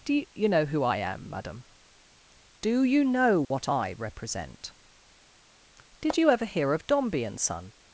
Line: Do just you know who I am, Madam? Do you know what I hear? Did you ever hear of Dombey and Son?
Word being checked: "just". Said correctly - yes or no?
no